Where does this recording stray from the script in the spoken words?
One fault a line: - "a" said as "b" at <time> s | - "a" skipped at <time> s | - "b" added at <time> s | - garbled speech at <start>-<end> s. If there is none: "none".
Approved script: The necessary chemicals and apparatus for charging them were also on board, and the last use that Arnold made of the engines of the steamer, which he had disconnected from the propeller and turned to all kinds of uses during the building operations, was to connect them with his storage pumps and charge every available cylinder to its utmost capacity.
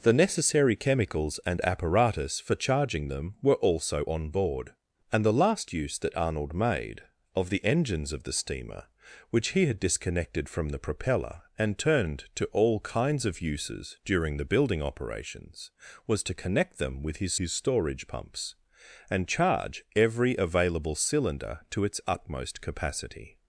- "his" added at 17.4 s